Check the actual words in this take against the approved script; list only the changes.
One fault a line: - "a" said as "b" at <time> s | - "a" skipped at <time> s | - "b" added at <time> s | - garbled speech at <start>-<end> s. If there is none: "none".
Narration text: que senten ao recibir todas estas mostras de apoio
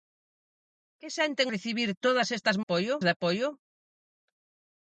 - "ao" skipped at 1.5 s
- "mostras" said as "apoio" at 2.6 s